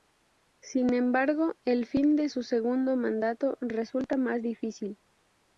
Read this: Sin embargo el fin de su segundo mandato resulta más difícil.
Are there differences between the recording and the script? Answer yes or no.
no